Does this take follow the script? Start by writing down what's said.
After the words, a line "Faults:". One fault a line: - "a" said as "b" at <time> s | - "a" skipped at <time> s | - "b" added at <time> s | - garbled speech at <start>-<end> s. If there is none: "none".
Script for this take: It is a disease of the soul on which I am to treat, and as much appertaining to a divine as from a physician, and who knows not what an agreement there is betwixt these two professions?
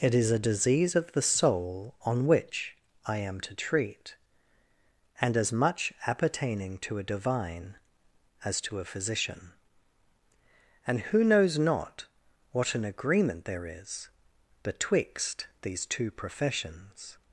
It is a disease of the soul on which I am to treat, and as much appertaining to a divine as to a physician, and who knows not what an agreement there is betwixt these two professions?
Faults:
- "from" said as "to" at 8.6 s